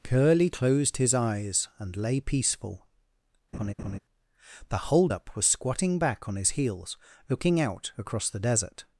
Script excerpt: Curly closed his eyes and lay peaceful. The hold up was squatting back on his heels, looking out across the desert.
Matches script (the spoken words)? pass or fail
pass